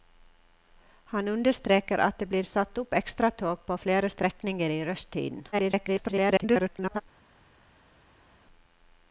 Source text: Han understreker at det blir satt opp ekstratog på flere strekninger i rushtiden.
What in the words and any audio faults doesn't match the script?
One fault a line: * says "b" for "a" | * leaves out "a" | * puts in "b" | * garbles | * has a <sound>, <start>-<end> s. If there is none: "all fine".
* garbles